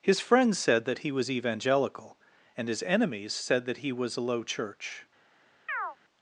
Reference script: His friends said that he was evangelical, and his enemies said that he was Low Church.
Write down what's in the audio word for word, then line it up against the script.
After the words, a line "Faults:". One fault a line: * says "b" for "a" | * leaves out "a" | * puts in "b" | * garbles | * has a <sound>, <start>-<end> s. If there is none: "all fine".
His friends said that he was evangelical, and his enemies said that he was a Low Church.
Faults:
* puts in "a"
* has a chirp, 5.7-6.0 s